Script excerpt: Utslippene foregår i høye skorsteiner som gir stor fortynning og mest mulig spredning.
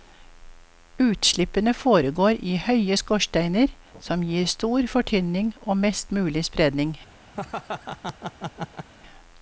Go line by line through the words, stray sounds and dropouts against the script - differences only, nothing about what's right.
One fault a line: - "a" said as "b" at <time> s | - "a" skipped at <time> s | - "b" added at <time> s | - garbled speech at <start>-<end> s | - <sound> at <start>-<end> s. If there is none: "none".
- laugh at 7.3-8.9 s